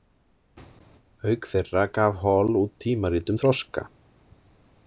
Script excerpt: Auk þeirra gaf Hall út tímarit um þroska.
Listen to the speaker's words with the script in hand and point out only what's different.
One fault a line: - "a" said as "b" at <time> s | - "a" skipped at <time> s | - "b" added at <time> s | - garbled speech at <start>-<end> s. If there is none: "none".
none